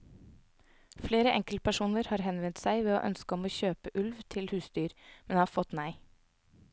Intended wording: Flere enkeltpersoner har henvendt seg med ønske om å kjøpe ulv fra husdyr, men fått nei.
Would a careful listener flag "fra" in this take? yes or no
yes